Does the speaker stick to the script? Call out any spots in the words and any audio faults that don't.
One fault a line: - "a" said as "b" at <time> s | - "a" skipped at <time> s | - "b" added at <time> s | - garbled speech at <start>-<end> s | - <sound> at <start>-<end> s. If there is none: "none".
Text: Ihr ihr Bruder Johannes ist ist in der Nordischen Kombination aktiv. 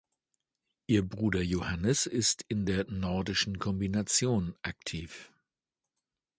- "ihr" skipped at 1.1 s
- "ist" skipped at 2.4 s